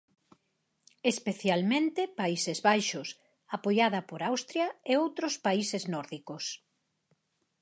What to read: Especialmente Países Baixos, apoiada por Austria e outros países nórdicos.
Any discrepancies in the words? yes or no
no